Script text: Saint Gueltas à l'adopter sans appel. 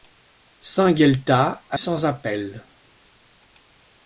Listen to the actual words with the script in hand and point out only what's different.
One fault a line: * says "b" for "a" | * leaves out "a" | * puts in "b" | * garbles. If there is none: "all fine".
* leaves out "l'adopter"